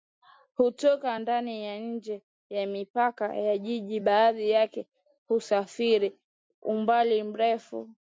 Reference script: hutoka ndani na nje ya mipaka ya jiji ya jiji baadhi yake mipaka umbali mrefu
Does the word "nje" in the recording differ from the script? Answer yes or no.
no